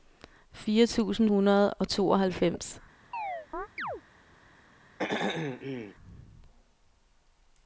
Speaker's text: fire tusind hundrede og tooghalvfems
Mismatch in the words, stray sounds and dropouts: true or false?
true